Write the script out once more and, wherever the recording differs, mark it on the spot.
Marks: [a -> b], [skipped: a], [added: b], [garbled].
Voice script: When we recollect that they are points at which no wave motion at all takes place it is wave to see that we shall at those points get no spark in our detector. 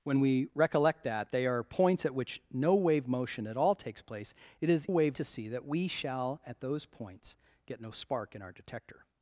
When we recollect that they are points at which no wave motion at all takes place it is wave to see that we shall at those points get no spark in our detector.